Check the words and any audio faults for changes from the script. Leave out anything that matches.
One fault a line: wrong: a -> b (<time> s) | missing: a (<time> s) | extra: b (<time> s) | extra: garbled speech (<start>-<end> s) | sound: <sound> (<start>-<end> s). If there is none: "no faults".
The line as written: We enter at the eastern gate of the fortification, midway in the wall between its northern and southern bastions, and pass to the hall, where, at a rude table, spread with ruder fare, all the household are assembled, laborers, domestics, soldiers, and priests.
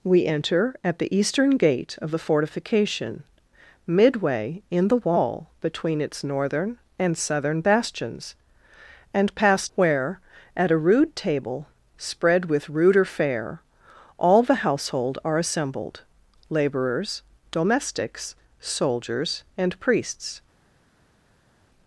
missing: to the hall (9.7 s)